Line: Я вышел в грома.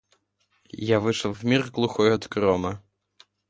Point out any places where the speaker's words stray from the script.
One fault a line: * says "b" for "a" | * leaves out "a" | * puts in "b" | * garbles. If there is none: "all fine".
* puts in "мир глухой от"